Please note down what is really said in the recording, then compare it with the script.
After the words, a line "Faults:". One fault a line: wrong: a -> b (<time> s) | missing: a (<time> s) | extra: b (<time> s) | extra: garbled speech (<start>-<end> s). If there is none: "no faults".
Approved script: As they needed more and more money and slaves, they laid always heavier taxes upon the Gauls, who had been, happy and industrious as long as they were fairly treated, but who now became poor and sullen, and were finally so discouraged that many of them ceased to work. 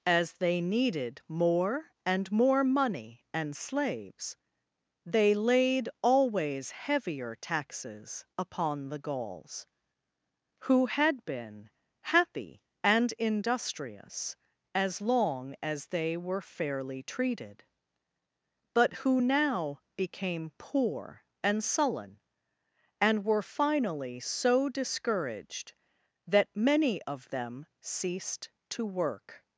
As they needed more and more money and slaves, they laid always heavier taxes upon the Gauls, who had been, happy and industrious as long as they were fairly treated, but who now became poor and sullen, and were finally so discouraged that many of them ceased to work.
Faults:
no faults